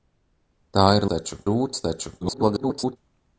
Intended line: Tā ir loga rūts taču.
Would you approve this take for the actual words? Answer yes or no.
no